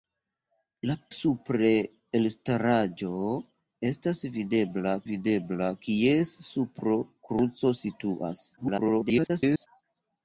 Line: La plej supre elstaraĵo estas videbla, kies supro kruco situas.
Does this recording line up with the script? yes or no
no